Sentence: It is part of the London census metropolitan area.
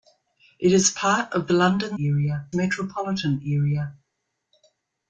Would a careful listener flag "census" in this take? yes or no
yes